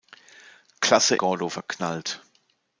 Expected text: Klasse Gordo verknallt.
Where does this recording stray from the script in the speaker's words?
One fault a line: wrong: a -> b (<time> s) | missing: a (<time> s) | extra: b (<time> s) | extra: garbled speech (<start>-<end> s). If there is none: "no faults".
no faults